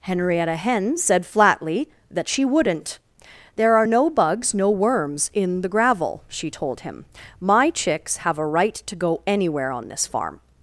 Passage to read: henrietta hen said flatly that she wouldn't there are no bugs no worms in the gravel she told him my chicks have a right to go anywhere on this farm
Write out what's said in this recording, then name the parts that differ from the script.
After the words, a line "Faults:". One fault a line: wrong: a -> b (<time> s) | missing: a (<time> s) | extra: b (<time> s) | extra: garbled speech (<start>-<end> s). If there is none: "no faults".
henrietta hen said flatly that she wouldn't there are no bugs no worms in the gravel she told him my chicks have a right to go anywhere on this farm
Faults:
no faults